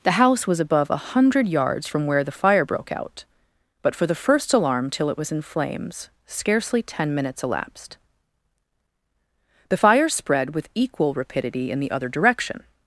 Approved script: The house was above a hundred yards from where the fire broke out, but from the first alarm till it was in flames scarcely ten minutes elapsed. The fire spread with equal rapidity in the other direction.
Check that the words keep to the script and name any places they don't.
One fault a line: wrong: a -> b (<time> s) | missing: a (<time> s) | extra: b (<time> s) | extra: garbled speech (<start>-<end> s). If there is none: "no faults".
wrong: from -> for (3.9 s)